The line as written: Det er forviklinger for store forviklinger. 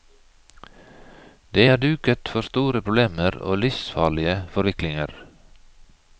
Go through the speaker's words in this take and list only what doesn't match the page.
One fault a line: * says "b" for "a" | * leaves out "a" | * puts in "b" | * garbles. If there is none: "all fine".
* says "duket" for "forviklinger"
* puts in "problemer og livsfarlige"